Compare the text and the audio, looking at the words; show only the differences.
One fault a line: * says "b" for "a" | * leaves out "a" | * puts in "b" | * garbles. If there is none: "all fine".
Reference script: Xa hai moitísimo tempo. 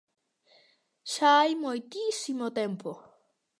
all fine